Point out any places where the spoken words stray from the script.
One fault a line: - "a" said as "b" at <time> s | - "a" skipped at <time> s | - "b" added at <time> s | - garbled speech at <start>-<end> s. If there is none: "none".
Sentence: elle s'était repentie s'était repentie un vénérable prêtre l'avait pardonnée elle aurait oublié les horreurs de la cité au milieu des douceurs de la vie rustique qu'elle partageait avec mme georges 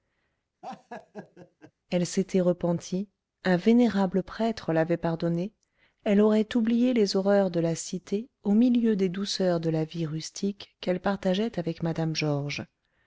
- "s'était repentie" skipped at 3.1 s